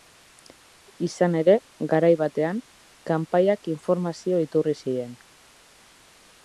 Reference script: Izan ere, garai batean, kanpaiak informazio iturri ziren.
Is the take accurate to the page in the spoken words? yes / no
yes